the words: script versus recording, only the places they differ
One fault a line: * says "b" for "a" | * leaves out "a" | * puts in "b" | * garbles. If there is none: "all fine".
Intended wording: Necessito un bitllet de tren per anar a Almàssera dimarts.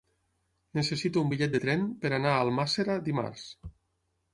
all fine